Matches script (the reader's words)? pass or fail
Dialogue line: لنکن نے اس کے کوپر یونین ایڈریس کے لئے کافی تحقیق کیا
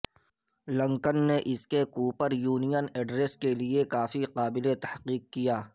fail